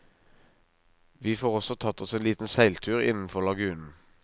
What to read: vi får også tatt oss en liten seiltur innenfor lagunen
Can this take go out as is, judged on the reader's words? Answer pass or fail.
pass